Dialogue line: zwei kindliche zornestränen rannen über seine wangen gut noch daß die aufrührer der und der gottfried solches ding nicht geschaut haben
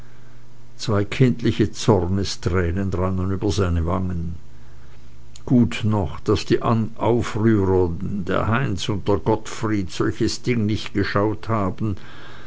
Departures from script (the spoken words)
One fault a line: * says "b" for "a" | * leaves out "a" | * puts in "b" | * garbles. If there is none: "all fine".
* puts in "heinz"